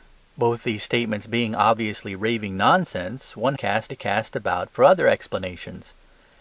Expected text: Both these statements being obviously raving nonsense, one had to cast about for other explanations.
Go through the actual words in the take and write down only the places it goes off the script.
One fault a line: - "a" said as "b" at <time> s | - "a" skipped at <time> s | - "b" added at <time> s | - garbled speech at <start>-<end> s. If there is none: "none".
- "had" said as "cast" at 3.5 s